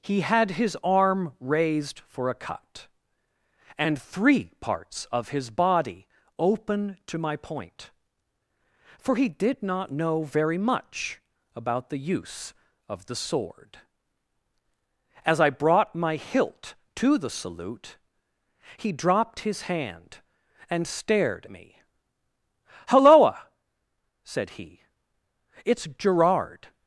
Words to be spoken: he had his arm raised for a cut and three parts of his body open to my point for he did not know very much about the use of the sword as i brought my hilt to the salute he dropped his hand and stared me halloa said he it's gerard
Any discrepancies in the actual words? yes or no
no